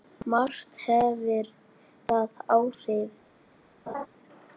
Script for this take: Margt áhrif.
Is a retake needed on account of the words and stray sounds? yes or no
yes